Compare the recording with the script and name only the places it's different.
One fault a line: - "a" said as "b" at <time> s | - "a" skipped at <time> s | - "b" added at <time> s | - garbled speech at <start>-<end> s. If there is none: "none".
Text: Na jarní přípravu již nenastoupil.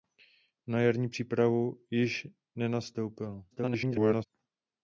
- garbled speech at 3.5-4.3 s